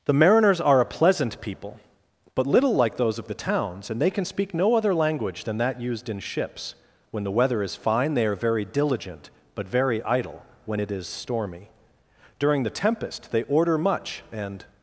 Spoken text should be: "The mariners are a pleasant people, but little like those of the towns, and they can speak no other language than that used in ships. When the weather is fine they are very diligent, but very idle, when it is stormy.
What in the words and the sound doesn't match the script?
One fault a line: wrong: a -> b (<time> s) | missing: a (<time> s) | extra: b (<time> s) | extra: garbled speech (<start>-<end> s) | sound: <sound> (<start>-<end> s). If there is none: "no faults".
extra: During the tempest they order much and (12.4 s)